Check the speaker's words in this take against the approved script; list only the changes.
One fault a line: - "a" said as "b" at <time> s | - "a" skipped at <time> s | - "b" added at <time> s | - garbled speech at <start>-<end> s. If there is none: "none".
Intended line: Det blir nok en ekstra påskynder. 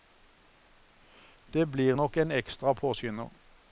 none